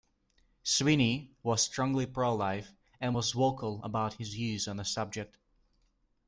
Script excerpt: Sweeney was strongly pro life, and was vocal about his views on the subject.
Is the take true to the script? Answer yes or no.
yes